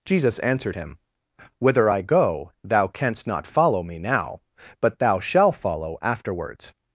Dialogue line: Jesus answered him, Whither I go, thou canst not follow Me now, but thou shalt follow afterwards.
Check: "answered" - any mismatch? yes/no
no